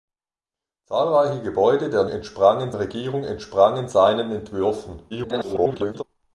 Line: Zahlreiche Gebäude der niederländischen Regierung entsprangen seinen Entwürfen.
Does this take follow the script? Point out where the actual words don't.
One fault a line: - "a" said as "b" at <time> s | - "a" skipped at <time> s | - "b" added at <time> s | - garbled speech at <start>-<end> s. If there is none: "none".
- "niederländischen" said as "entsprangen" at 2.1 s
- garbled speech at 5.1-6.0 s